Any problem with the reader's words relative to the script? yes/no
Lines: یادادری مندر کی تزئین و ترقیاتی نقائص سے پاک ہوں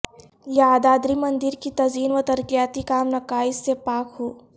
yes